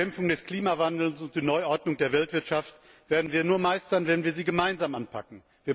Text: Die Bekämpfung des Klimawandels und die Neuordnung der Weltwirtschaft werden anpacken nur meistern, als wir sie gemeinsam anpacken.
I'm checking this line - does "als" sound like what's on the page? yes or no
no